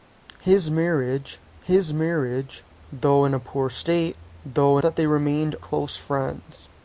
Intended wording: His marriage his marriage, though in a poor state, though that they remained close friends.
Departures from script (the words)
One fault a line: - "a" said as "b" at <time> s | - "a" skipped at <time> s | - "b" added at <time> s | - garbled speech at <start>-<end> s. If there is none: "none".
none